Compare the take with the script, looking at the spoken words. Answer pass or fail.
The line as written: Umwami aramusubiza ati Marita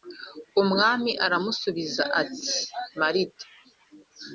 pass